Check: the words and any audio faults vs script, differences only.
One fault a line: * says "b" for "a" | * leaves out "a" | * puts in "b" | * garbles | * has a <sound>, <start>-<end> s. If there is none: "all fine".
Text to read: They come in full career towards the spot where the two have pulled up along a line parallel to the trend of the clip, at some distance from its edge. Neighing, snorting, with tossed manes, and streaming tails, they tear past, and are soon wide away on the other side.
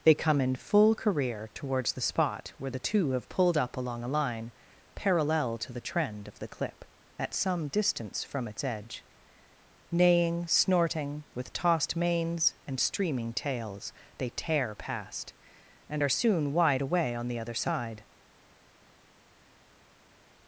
all fine